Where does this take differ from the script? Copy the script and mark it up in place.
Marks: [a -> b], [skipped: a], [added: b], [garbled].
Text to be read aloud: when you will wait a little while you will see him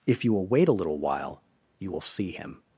[when -> if] you will wait a little while you will see him